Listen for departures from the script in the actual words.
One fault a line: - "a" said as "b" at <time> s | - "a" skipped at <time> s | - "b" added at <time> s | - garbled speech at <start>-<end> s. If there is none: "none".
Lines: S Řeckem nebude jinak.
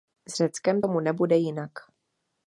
- "tomu" added at 0.8 s